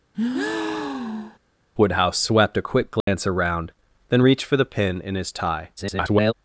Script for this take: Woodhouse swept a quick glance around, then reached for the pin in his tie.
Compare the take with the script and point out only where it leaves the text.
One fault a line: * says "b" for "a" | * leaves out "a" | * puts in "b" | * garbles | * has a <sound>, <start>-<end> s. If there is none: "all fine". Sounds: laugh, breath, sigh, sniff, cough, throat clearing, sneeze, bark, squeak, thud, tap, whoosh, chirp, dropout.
* has a breath, 0.1-1.4 s
* has a dropout, 3.0-3.1 s
* garbles